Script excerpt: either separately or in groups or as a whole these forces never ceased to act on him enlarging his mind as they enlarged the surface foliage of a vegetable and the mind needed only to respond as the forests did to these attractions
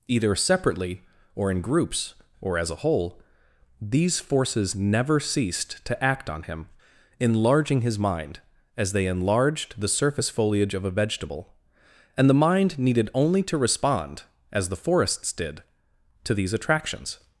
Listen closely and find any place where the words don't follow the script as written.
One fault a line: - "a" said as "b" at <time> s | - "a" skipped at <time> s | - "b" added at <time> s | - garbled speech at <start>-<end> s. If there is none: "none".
none